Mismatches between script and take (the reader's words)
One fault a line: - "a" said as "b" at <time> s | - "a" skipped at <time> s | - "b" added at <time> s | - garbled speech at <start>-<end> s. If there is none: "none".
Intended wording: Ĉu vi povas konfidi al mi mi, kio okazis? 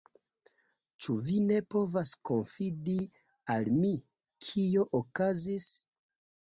- "ne" added at 1.5 s
- "mi" skipped at 4.0 s